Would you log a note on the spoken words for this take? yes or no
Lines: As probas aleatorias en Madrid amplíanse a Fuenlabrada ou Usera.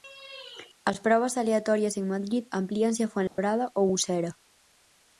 no